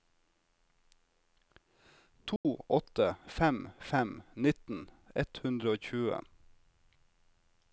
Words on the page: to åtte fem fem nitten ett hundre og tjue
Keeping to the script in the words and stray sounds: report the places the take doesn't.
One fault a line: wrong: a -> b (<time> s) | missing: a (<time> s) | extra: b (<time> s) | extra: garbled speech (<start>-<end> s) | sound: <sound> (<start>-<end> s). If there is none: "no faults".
sound: dropout (2.4-2.4 s)